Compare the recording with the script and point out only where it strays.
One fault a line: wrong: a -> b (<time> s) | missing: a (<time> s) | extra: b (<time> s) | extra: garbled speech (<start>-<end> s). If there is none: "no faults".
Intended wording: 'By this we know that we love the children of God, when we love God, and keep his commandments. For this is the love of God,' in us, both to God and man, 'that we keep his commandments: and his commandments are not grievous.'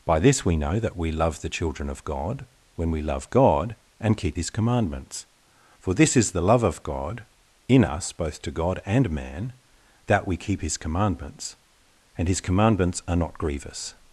no faults